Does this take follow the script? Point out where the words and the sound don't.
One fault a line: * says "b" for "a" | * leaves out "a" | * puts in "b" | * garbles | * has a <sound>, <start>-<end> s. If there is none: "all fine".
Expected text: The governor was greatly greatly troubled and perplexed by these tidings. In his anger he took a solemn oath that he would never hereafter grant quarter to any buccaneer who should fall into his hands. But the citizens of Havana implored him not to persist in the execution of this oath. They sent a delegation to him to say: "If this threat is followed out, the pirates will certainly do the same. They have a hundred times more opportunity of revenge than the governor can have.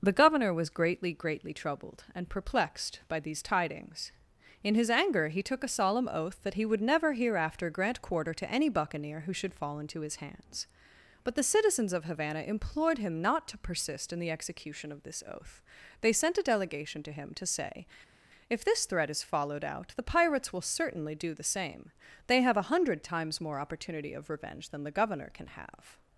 all fine